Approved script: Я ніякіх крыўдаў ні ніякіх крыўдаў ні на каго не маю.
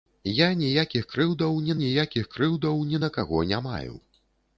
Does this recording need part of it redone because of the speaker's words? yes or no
no